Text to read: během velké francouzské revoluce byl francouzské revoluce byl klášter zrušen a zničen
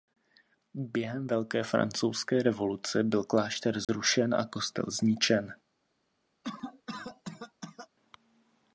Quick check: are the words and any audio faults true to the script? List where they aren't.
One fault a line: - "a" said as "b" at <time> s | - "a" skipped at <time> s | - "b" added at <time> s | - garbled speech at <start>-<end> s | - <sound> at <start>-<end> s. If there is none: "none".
- "francouzské revoluce byl" skipped at 3.2 s
- dropout at 3.8-3.9 s
- "kostel" added at 4.4 s
- cough at 6.4-7.9 s